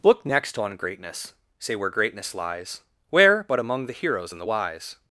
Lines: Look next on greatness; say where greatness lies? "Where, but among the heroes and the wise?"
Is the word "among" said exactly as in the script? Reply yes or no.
yes